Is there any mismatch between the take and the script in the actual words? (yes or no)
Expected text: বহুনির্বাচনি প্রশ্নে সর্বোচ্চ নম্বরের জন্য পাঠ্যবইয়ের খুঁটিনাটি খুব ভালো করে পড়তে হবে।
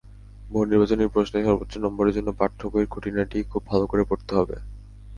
no